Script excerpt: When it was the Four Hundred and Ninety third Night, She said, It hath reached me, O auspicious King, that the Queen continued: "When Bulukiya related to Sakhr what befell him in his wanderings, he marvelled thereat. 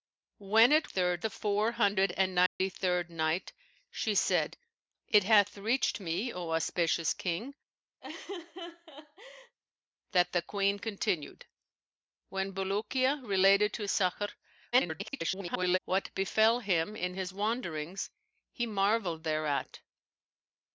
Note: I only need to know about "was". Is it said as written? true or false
false